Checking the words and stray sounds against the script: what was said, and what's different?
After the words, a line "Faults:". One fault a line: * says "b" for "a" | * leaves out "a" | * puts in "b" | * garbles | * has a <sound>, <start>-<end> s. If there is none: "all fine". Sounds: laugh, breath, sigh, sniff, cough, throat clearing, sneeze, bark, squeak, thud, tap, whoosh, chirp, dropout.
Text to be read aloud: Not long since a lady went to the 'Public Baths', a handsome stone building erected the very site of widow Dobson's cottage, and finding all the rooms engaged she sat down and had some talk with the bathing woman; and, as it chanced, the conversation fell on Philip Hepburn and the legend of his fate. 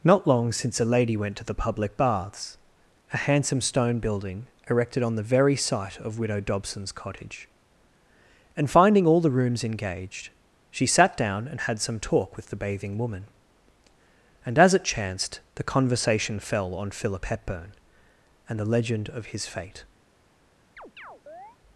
Not long since a lady went to the 'Public Baths', a handsome stone building erected on the very site of widow Dobson's cottage, and finding all the rooms engaged she sat down and had some talk with the bathing woman; and, as it chanced, the conversation fell on Philip Hepburn and the legend of his fate.
Faults:
* puts in "on"
* has a chirp, 20.8-21.6 s